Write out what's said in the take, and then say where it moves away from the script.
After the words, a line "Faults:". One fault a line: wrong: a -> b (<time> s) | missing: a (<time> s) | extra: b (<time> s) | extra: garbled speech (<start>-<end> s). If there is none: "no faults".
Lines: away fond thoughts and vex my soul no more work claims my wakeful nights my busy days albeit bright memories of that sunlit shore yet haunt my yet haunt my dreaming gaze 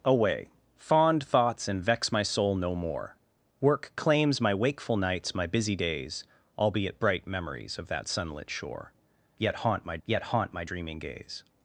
away fond thoughts and vex my soul no more work claims my wakeful nights my busy days albeit bright memories of that sunlit shore yet haunt my yet haunt my dreaming gaze
Faults:
no faults